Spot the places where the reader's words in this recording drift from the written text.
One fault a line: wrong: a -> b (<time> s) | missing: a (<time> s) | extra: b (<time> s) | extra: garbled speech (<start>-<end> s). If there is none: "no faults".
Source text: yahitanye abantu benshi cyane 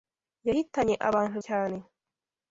missing: benshi (1.4 s)